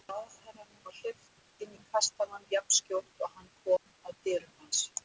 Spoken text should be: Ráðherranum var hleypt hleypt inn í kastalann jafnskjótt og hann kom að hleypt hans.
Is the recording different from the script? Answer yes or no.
yes